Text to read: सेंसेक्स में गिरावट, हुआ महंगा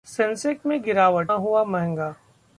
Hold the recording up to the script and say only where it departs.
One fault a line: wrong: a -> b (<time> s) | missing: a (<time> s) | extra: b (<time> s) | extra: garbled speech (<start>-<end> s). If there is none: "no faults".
no faults